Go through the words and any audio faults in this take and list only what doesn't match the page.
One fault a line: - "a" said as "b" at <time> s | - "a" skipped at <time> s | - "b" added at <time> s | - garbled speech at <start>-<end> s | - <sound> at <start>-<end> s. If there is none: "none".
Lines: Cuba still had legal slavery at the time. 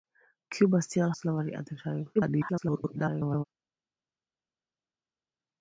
- "had legal" skipped at 1.1 s
- garbled speech at 2.2-3.4 s